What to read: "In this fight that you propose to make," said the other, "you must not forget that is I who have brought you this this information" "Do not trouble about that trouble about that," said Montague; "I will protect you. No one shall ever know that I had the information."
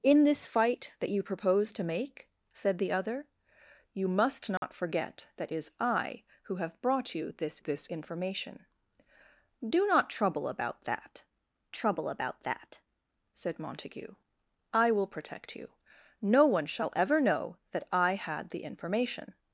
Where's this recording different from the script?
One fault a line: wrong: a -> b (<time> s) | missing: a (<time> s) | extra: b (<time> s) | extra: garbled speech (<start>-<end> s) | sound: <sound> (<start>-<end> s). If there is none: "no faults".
sound: dropout (4.6-4.6 s)